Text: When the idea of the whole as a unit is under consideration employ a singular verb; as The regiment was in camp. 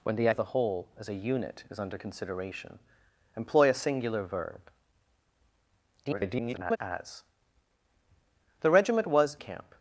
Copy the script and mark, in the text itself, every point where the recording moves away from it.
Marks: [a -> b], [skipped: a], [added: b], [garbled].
When the [skipped: idea] of the whole as a unit is under consideration employ a singular verb; [garbled] as The regiment was [skipped: in] camp.